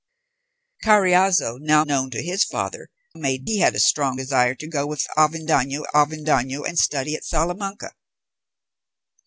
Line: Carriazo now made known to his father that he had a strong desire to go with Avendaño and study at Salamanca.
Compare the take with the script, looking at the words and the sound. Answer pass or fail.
fail